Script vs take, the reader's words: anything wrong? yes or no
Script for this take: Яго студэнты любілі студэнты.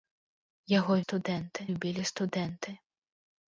no